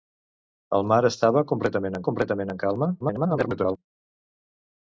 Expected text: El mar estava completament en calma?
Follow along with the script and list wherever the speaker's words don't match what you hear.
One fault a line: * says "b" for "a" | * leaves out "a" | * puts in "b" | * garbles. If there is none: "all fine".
* puts in "completament"
* garbles